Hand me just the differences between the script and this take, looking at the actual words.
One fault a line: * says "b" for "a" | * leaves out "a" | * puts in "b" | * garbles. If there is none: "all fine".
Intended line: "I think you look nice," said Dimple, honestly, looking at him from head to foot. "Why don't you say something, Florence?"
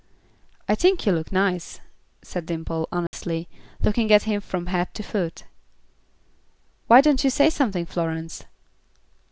all fine